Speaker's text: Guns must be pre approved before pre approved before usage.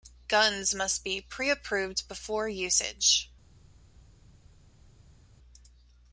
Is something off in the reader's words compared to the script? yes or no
yes